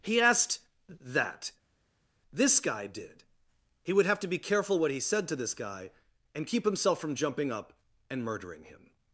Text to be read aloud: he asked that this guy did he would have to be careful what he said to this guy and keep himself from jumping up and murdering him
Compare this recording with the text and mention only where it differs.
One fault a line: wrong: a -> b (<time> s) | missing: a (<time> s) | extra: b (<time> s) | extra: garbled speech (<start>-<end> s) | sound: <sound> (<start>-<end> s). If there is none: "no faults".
no faults